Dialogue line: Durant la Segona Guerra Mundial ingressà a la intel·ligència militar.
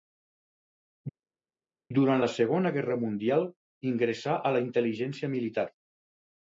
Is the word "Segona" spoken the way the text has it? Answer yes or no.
yes